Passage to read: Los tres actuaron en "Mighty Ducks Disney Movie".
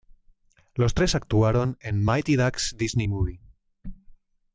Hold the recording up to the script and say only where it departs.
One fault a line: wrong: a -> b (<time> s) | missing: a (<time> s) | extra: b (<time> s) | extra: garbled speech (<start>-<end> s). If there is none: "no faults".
no faults